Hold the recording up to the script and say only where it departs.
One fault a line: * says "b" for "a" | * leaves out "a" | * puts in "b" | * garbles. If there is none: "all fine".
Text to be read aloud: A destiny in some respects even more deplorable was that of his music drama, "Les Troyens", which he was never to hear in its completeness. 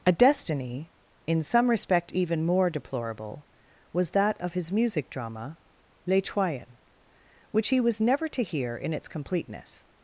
* says "respect" for "respects"